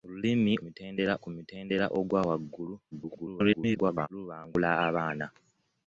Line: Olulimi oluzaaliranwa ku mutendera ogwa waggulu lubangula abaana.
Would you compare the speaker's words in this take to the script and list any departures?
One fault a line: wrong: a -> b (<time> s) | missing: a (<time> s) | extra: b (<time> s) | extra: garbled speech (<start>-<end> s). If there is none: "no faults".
wrong: oluzaaliranwa -> mutendera (0.6 s)
extra: garbled speech (2.9-4.1 s)